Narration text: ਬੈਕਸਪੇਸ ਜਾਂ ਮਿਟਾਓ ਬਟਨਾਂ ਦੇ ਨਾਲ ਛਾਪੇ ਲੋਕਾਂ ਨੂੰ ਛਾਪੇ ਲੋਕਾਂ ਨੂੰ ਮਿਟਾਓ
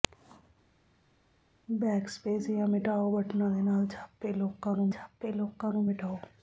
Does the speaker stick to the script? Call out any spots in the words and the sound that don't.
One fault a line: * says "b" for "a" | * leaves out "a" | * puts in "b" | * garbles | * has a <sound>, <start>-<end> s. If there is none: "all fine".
all fine